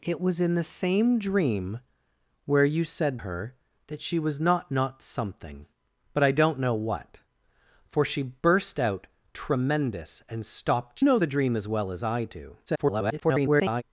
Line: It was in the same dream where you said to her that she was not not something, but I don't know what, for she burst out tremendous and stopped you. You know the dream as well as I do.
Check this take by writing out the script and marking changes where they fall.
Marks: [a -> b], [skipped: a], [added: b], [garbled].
It was in the same dream where you said [skipped: to] her that she was not not something, but I don't know what, for she burst out tremendous and stopped [skipped: you. You] know the dream as well as I do. [garbled]